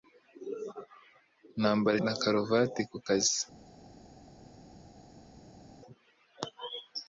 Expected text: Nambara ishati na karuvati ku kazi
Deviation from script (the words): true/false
true